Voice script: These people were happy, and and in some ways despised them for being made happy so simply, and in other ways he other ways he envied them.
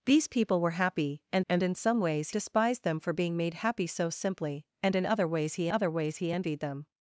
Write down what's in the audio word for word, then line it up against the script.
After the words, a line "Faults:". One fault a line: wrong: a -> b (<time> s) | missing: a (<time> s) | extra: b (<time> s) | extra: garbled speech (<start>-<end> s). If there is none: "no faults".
These people were happy, and and in some ways despised them for being made happy so simply, and in other ways he other ways he envied them.
Faults:
no faults